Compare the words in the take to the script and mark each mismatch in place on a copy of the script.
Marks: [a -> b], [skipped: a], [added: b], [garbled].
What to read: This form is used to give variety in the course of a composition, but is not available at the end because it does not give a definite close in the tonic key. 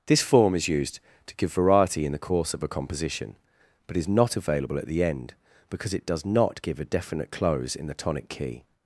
This form is used to give variety in the course of a composition, but is not available at the end because it does not give a definite close in the tonic key.